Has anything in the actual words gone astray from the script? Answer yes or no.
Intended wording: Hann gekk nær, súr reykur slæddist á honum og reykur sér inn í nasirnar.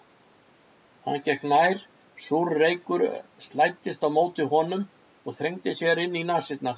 yes